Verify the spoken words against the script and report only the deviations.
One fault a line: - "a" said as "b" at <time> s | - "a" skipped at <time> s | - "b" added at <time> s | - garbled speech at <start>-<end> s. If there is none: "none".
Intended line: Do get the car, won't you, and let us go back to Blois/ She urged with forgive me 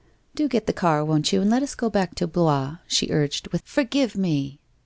none